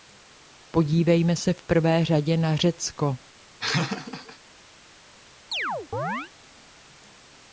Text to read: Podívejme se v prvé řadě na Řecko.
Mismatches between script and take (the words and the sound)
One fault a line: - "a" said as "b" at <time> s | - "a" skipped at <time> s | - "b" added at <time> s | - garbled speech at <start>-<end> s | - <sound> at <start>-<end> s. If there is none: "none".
- laugh at 3.6-4.4 s
- chirp at 5.5-6.3 s